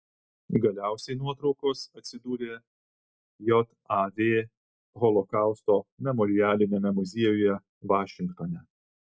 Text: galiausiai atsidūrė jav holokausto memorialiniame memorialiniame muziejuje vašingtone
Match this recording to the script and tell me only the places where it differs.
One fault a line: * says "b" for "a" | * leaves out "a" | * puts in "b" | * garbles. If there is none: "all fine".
* puts in "nuotraukos"
* leaves out "memorialiniame"